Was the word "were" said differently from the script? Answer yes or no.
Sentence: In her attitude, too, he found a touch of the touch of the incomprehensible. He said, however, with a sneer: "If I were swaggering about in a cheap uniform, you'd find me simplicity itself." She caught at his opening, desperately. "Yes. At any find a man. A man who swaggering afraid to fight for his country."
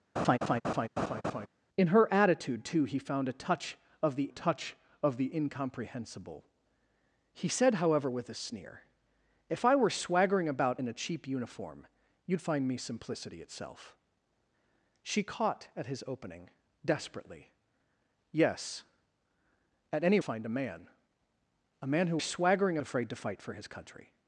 no